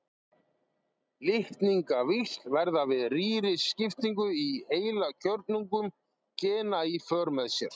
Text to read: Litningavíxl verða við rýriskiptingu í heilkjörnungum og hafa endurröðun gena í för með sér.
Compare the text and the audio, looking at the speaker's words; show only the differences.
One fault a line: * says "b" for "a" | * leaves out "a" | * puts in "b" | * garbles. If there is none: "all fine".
* leaves out "og hafa endurröðun"